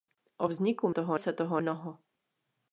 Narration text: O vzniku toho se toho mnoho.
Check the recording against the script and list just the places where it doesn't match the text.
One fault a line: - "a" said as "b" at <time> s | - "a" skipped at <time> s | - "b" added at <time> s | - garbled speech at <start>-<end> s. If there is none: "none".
none